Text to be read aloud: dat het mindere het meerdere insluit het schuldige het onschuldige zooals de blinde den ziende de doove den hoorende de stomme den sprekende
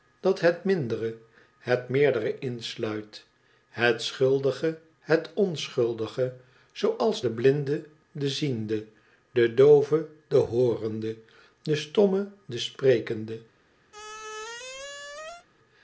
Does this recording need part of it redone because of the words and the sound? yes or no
yes